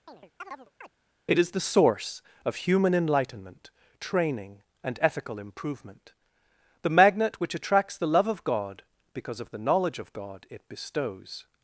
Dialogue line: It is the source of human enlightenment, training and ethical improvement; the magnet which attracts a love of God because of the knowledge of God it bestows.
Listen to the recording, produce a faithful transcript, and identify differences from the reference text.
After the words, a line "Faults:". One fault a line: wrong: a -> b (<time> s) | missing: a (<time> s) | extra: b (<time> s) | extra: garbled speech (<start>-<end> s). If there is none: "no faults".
It is the source of human enlightenment, training and ethical improvement; the magnet which attracts the love of God because of the knowledge of God it bestows.
Faults:
wrong: a -> the (8.0 s)